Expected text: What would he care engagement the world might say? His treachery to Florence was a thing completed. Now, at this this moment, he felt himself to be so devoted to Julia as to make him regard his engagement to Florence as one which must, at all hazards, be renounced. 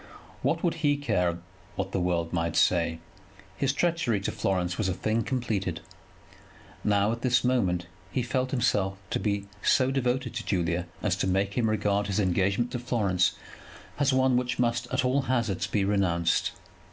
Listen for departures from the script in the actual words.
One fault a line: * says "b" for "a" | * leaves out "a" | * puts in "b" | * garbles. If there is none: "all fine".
* says "what" for "engagement"
* leaves out "this"